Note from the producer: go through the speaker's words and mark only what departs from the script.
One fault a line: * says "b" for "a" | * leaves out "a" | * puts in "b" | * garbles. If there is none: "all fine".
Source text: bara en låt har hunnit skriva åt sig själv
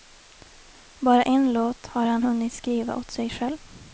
* puts in "han"